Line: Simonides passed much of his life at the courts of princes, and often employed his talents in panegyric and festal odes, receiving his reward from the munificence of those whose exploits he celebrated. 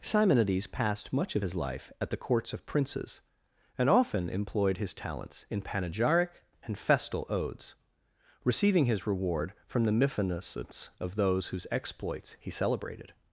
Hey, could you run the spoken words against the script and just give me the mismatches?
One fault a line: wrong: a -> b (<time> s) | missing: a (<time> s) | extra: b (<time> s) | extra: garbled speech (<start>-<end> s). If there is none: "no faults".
no faults